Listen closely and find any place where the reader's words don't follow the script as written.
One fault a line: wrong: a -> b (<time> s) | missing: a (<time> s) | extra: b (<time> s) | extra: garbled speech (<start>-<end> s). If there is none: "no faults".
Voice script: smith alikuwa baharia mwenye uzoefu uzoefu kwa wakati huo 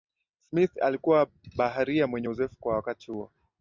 missing: uzoefu (2.6 s)